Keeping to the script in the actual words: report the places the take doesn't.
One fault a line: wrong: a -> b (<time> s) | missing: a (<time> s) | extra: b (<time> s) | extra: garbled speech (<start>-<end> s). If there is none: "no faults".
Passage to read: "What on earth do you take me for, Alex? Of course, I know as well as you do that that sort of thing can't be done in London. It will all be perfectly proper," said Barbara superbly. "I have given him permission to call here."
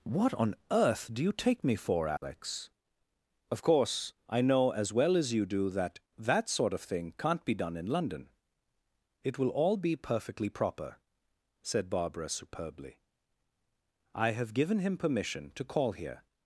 no faults